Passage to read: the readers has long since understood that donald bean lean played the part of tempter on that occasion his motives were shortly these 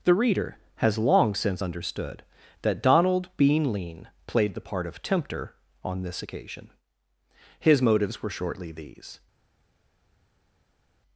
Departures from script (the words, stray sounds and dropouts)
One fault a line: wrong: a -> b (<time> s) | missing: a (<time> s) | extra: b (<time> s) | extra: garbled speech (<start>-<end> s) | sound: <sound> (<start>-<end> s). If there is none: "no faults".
wrong: readers -> reader (0.1 s)
wrong: that -> this (6.0 s)